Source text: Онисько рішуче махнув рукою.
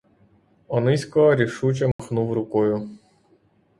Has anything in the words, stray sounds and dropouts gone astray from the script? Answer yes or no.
yes